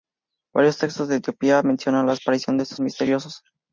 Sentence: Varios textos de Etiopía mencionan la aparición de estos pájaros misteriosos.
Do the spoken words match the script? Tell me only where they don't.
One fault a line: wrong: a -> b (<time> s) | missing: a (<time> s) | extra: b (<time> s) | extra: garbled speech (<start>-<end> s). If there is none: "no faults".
missing: pájaros (2.8 s)